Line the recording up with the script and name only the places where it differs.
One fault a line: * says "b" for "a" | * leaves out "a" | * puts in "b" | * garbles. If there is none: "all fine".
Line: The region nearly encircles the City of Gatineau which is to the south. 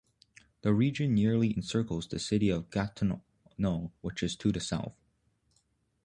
all fine